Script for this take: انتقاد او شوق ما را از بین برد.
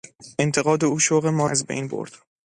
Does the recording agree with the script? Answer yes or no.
no